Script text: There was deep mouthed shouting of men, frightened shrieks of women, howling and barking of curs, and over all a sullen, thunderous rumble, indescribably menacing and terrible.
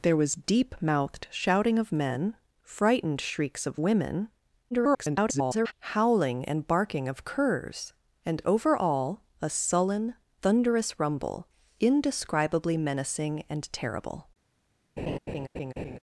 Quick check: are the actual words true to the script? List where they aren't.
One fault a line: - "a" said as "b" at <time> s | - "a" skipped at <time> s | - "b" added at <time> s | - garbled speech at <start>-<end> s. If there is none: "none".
- garbled speech at 4.7-5.7 s